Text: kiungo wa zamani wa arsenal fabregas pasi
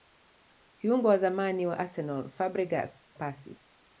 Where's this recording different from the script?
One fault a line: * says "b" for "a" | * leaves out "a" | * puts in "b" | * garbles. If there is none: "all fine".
all fine